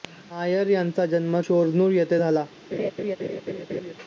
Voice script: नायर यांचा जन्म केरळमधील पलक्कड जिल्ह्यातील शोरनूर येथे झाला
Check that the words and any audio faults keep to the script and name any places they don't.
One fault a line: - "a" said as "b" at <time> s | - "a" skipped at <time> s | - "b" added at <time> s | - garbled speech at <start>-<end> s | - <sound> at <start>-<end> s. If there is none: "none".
- "केरळमधील पलक्कड जिल्ह्यातील" skipped at 1.4 s
- laugh at 2.7-3.9 s